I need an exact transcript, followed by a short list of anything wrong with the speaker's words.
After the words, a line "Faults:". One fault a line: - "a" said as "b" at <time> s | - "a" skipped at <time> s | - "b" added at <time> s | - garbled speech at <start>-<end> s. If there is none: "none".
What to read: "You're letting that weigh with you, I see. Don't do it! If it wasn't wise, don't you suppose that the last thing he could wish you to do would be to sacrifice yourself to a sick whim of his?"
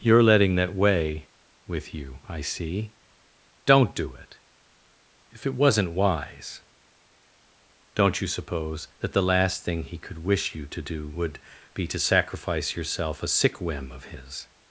"You're letting that weigh with you, I see. Don't do it! If it wasn't wise, don't you suppose that the last thing he could wish you to do would be to sacrifice yourself a sick whim of his?"
Faults:
- "to" skipped at 13.2 s